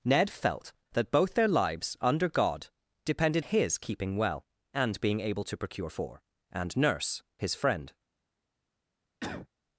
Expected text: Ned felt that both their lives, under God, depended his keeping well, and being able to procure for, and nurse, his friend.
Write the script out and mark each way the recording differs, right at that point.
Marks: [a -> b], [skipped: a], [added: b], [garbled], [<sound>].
Ned felt that both their lives, under God, depended his keeping well, and being able to procure for, and nurse, his friend. [cough]